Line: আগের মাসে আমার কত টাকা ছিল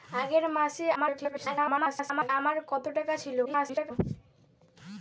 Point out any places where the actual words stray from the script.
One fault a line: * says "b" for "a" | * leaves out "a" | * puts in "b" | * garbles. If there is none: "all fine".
* garbles
* garbles